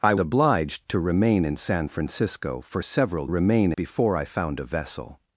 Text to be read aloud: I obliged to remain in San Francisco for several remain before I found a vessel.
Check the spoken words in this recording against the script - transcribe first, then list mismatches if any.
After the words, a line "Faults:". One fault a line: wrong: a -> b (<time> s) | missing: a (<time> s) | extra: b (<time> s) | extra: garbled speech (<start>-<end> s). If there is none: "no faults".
I obliged to remain in San Francisco for several remain before I found a vessel.
Faults:
no faults